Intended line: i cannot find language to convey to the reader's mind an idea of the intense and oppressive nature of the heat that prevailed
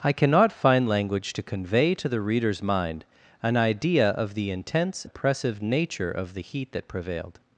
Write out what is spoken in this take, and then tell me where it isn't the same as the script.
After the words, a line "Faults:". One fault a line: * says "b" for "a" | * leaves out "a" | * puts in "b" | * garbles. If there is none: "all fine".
i cannot find language to convey to the reader's mind an idea of the intense oppressive nature of the heat that prevailed
Faults:
* leaves out "and"